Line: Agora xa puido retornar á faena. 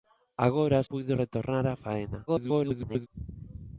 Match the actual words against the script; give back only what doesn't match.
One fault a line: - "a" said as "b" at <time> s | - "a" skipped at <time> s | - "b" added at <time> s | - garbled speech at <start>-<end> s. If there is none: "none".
- "xa" skipped at 0.9 s
- garbled speech at 2.3-3.1 s